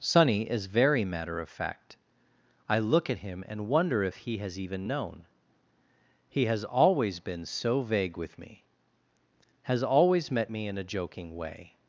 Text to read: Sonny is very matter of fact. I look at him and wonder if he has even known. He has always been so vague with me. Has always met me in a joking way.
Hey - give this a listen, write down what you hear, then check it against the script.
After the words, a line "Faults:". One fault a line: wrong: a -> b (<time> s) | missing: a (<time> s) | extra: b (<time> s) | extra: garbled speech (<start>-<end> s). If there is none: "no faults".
Sonny is very matter of fact. I look at him and wonder if he has even known. He has always been so vague with me. Has always met me in a joking way.
Faults:
no faults